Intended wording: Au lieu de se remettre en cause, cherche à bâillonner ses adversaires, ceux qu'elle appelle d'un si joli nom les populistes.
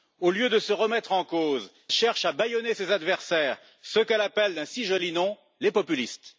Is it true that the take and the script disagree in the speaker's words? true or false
false